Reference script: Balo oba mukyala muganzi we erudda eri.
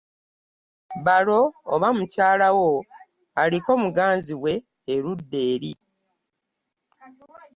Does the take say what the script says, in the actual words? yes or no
no